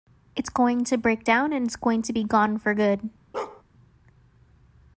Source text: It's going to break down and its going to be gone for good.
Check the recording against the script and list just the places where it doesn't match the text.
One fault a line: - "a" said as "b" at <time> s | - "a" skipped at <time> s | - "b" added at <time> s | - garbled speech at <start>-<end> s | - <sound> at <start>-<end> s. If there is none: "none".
- bark at 3.3-3.6 s